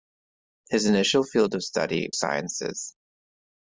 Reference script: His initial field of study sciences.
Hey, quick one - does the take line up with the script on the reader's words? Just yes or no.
yes